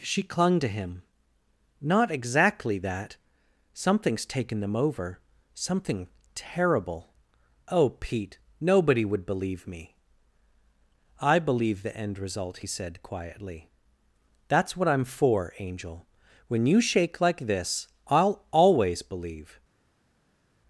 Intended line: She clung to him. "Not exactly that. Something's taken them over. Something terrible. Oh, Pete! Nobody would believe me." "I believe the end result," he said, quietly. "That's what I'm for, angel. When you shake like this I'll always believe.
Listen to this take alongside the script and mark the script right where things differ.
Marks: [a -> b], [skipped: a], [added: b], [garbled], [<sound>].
She clung to him. "Not exactly that. Something's taken them over. Something terrible. Oh, Pete! Nobody would believe me." "I believe the end result," he said, quietly. "That's what I'm for, angel. When you shake like this I'll always believe.